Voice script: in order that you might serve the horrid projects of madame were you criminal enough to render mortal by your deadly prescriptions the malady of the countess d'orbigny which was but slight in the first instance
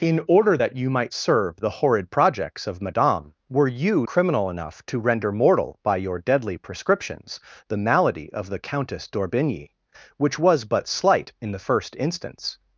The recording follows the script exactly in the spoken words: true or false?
true